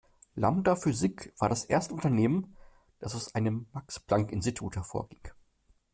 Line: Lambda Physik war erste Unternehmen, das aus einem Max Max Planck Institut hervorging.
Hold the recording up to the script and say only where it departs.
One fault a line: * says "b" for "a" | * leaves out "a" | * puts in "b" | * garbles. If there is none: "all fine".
* puts in "das"
* leaves out "Max"